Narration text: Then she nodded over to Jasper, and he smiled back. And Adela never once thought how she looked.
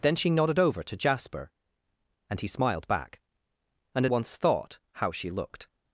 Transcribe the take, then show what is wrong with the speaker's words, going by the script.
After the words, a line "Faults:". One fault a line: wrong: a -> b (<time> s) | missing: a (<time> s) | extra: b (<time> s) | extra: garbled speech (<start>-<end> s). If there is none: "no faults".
Then she nodded over to Jasper, and he smiled back. And Once thought how she looked.
Faults:
missing: Adela never (4.1 s)